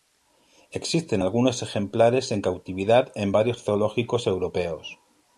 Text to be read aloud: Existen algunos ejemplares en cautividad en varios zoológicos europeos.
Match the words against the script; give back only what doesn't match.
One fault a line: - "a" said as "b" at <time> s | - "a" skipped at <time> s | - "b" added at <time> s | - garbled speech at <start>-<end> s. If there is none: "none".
none